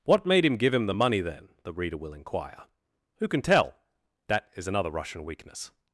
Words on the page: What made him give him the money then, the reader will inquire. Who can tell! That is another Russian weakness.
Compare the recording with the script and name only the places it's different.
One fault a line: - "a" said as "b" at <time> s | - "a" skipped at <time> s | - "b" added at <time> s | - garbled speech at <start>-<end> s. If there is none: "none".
none